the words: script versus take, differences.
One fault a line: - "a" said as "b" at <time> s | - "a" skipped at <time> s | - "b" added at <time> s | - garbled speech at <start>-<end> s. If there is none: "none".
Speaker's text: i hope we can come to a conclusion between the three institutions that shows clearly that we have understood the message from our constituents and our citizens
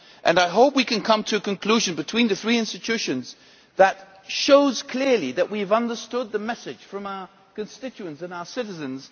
none